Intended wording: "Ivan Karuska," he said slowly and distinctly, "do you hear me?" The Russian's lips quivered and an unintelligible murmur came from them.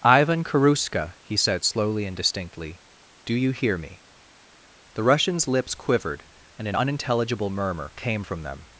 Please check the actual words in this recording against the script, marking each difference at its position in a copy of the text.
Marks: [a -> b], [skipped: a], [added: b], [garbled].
"Ivan Karuska," he said slowly and distinctly, "do you hear me?" The Russian's lips quivered and an unintelligible murmur came from them.